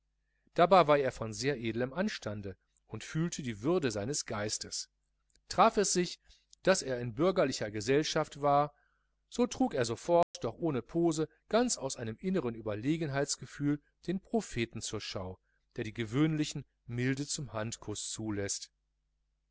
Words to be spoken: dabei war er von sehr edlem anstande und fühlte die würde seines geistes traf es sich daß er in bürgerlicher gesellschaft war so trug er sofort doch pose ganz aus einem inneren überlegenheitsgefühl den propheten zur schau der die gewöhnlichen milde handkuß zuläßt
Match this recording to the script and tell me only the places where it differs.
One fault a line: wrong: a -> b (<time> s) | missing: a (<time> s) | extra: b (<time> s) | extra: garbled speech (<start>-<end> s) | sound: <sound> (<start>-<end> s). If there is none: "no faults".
sound: dropout (10.2-10.3 s)
extra: ohne (10.6 s)
extra: zum (17.3 s)